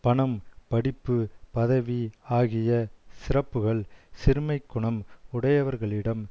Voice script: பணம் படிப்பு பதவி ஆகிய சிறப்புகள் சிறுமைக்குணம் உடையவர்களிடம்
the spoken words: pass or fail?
pass